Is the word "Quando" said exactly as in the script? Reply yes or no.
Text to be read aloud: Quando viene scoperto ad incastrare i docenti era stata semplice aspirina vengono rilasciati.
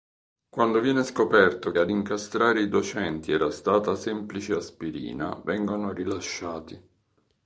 yes